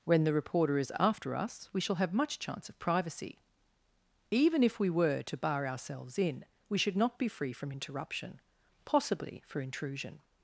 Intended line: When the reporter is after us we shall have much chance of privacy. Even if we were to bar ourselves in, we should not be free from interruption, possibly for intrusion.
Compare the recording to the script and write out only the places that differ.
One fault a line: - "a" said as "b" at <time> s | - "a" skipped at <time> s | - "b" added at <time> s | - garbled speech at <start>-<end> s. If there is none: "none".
none